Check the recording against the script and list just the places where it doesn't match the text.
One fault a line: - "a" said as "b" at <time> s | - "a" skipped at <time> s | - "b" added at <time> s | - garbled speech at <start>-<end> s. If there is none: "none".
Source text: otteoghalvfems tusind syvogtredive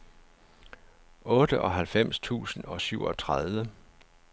- "og" added at 2.6 s